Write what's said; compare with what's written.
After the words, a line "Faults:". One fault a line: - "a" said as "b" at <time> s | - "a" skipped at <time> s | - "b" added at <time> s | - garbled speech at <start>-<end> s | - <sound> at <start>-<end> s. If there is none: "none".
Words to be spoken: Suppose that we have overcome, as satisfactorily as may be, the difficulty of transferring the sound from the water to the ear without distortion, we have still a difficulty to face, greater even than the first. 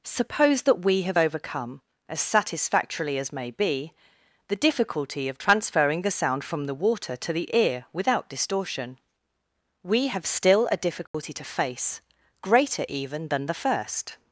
Suppose that we have overcome, as satisfactorily as may be, the difficulty of transferring the sound from the water to the ear without distortion, we have still a difficulty to face, greater even than the first.
Faults:
- dropout at 11.1-11.1 s